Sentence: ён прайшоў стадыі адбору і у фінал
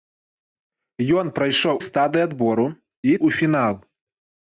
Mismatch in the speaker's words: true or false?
false